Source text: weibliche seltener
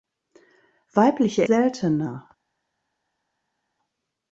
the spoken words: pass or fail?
pass